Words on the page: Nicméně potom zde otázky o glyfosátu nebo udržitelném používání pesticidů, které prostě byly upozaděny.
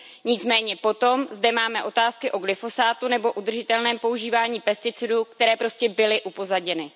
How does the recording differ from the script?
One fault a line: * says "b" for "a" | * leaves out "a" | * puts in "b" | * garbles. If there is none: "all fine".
* puts in "máme"